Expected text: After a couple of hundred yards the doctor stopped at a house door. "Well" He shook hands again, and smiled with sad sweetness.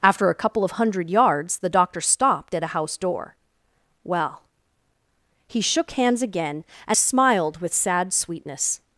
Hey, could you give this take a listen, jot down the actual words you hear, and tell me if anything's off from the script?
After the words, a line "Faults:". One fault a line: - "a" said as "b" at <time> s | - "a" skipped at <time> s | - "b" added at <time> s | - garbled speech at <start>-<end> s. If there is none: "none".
After a couple of hundred yards the doctor stopped at a house door. "Well" He shook hands again, and smiled with sad sweetness.
Faults:
none